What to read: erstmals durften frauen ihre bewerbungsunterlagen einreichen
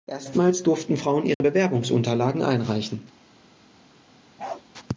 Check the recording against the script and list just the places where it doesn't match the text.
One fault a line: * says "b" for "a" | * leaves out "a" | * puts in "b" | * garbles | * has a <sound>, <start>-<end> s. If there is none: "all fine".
* has a dropout, 1.3-1.4 s
* has a bark, 4.4-4.6 s